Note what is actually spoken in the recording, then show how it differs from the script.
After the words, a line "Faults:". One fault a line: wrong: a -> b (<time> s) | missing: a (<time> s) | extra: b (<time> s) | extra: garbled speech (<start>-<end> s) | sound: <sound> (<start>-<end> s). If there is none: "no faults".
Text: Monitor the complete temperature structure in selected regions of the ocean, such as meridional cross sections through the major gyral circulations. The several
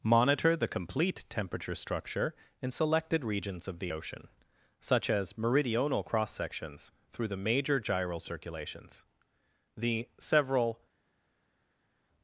Monitor the complete temperature structure in selected regions of the ocean, such as meridional cross sections through the major gyral circulations. The several
Faults:
no faults